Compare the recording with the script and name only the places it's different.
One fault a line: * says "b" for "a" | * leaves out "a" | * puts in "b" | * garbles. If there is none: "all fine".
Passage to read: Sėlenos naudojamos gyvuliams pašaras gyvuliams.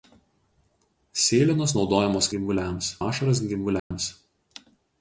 all fine